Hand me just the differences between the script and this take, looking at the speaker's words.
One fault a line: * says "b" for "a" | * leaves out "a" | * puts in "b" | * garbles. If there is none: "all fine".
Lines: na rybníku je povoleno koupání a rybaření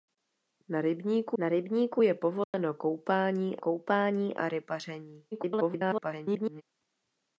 * puts in "na rybníku"
* puts in "koupání"
* garbles